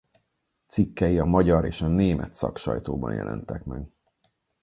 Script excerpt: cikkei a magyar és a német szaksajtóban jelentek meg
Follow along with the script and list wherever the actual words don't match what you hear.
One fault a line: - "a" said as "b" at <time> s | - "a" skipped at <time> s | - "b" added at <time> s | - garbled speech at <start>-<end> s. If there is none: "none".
none